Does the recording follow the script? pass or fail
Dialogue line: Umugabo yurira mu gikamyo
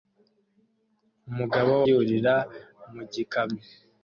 pass